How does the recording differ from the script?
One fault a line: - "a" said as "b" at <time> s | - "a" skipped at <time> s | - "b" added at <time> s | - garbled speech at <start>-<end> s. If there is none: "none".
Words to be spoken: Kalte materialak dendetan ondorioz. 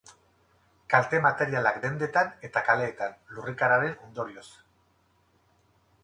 - "eta kaleetan lurrikararen" added at 2.5 s